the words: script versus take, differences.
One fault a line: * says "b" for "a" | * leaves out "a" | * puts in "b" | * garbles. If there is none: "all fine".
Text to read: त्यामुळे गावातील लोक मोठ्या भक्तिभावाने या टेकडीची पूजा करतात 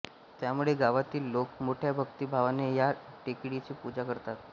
all fine